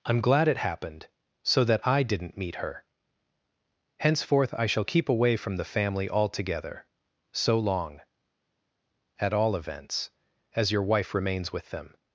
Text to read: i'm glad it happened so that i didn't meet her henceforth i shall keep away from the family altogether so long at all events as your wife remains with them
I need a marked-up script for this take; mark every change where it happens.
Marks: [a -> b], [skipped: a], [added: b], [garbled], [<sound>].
i'm glad it happened so that i didn't meet her henceforth i shall keep away from the family altogether so long at all events as your wife remains with them